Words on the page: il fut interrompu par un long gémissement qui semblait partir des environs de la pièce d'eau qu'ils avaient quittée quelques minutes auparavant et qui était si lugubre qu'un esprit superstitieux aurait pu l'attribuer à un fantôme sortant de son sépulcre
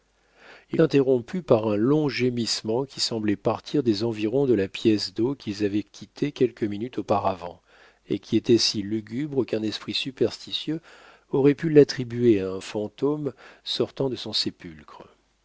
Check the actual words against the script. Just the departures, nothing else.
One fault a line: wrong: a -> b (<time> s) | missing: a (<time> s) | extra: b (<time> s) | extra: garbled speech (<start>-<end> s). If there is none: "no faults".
missing: fut (0.8 s)